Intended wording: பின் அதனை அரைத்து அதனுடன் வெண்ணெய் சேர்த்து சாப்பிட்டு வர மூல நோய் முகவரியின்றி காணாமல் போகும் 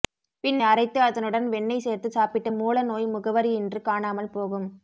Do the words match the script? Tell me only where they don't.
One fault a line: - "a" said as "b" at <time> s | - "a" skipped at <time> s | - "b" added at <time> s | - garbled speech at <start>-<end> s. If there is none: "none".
- "அதனை" skipped at 0.6 s
- "வர" skipped at 2.5 s